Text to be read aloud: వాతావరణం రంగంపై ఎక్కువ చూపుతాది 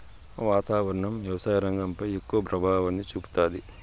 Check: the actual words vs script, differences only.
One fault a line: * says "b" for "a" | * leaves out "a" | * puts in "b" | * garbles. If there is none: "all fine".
* puts in "వ్యవసాయ"
* puts in "ప్రభావాన్ని"